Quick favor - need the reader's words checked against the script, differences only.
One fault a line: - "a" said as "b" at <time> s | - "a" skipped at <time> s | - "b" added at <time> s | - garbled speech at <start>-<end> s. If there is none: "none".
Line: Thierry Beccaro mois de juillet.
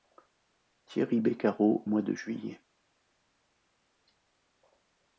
none